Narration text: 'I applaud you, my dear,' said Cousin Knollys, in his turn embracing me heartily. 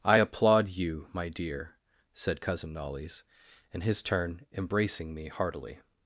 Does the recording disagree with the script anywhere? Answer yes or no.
no